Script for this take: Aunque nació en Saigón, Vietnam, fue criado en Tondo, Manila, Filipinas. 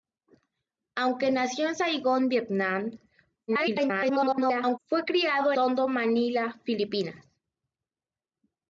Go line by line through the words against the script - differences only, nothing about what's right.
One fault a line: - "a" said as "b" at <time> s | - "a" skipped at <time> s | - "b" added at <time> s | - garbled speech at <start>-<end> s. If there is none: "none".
- garbled speech at 3.5-4.8 s
- "en" skipped at 5.5 s